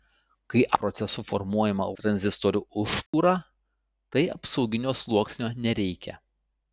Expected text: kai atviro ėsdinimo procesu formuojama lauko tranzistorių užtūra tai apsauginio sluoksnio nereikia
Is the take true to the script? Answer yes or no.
no